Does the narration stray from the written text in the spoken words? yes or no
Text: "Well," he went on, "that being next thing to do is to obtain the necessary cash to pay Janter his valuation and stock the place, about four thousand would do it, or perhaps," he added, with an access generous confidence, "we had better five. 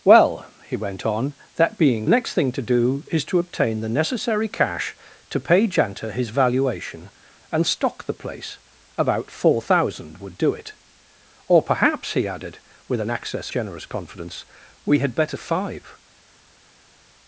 no